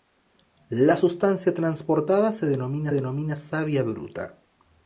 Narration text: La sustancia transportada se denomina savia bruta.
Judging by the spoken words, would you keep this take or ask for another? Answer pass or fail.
fail